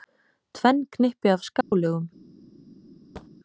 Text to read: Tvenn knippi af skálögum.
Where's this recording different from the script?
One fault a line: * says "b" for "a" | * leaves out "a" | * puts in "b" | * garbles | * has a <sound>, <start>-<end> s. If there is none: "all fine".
* has a dropout, 1.6-1.7 s
* has a thud, 3.2-3.3 s